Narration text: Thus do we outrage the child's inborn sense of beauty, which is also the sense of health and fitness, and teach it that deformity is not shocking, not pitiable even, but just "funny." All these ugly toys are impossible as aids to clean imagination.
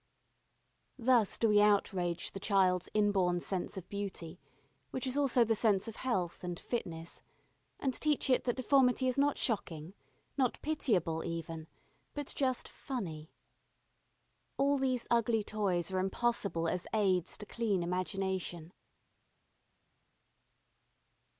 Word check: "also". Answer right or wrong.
right